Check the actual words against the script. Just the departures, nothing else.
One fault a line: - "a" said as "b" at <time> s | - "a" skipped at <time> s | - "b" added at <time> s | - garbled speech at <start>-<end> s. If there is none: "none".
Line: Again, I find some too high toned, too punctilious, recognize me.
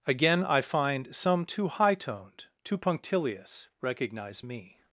none